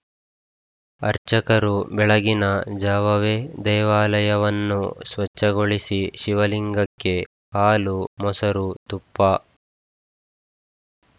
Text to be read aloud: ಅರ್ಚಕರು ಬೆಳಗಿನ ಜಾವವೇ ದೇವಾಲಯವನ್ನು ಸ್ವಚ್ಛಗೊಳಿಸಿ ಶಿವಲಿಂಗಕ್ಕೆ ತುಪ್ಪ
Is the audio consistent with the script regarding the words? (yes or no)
no